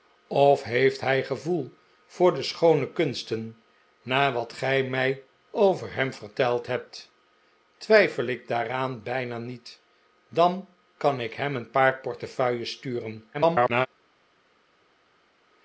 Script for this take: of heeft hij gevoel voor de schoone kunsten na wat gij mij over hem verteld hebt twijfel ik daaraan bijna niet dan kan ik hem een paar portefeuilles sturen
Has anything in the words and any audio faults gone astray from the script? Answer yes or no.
yes